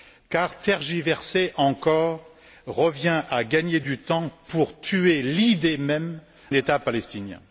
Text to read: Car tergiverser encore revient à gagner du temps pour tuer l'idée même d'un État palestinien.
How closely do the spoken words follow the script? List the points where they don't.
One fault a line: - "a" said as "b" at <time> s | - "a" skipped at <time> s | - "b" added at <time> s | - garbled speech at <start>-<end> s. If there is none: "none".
- "d'un" skipped at 6.2 s